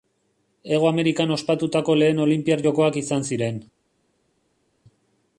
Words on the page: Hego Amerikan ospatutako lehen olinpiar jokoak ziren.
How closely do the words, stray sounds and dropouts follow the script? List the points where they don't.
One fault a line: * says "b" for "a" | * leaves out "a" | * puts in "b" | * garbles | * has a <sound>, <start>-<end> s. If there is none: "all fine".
* puts in "izan"